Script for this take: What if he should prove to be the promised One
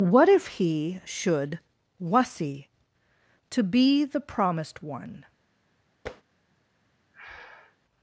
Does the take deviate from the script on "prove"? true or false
true